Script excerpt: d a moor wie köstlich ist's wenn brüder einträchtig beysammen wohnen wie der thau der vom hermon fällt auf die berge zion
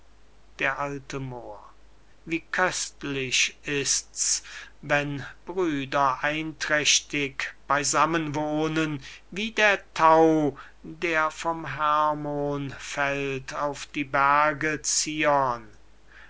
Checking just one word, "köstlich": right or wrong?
right